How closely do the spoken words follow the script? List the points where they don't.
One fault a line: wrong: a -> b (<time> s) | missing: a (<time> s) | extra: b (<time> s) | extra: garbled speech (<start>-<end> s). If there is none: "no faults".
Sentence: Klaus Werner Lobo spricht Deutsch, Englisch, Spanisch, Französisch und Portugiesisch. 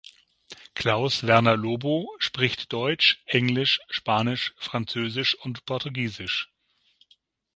no faults